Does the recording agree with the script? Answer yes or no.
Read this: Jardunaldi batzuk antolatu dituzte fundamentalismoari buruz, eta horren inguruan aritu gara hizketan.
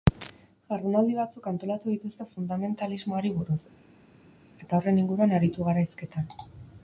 yes